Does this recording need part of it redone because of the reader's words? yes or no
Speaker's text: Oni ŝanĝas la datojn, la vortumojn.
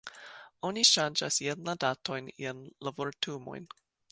yes